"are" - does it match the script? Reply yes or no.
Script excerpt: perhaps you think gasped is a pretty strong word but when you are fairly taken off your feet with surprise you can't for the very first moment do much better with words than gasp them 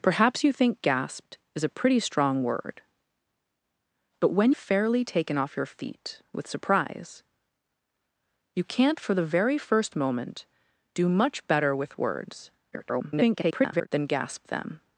no